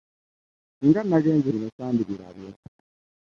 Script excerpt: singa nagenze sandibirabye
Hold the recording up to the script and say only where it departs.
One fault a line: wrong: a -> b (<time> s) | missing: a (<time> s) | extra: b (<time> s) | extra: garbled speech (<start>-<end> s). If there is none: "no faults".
extra: bino (1.5 s)